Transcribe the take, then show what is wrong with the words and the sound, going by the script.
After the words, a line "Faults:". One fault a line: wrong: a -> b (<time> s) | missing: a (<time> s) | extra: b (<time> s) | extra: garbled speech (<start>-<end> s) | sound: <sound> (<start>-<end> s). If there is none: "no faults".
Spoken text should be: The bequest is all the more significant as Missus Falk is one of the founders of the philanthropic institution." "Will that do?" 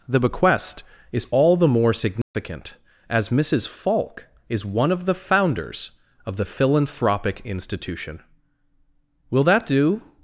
The bequest is all the more significant as Missus Falk is one of the founders of the philanthropic institution." "Will that do?"
Faults:
sound: dropout (2.2-2.3 s)